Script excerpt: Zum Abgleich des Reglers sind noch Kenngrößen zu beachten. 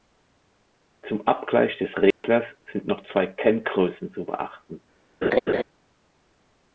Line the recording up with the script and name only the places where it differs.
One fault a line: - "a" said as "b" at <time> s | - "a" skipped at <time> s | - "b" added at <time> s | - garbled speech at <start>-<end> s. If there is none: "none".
- "zwei" added at 3.1 s